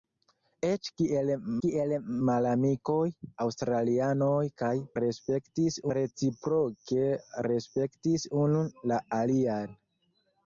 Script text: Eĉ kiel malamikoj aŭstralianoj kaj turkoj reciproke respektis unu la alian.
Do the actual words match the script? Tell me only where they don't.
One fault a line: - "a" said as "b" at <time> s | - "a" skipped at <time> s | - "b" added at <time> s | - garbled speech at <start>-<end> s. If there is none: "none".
- "kiel" added at 1.6 s
- "turkoj" said as "respektis" at 5.0 s